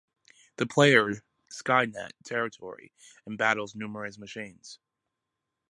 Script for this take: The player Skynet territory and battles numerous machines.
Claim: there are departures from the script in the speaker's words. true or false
false